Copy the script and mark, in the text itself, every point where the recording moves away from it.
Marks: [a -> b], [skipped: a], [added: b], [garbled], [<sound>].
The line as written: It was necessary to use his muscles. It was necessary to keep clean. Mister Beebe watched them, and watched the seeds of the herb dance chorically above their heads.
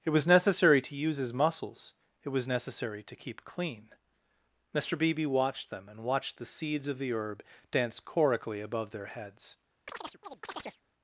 It was necessary to use his muscles. It was necessary to keep clean. Mister Beebe watched them, and watched the seeds of the herb dance chorically above their heads. [chirp]